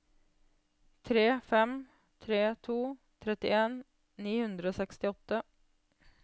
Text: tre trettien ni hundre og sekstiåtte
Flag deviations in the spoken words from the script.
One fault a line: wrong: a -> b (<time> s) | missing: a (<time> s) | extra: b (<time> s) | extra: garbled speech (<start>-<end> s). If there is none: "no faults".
extra: fem tre to (1.5 s)